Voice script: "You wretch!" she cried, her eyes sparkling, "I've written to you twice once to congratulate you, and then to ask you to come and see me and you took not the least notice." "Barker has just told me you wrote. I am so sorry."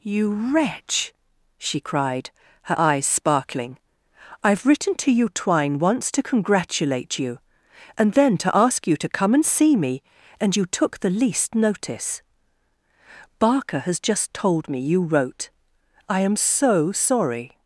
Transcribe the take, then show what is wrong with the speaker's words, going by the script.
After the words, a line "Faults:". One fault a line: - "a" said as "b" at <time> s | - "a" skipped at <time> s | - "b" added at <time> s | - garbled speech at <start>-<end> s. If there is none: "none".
"You wretch!" she cried, her eyes sparkling, "I've written to you twine once to congratulate you, and then to ask you to come and see me and you took the least notice." "Barker has just told me you wrote. I am so sorry."
Faults:
- "twice" said as "twine" at 5.3 s
- "not" skipped at 11.0 s